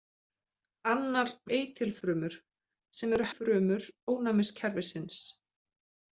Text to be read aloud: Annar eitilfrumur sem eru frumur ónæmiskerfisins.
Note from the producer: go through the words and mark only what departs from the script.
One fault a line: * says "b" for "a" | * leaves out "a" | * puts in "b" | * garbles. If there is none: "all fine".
all fine